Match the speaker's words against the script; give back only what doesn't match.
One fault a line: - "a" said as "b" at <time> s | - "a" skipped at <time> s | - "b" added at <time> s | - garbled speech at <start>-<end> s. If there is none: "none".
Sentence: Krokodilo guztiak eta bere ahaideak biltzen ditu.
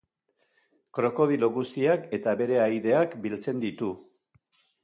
none